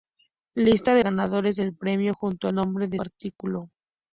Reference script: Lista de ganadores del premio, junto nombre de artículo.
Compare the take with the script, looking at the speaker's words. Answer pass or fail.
pass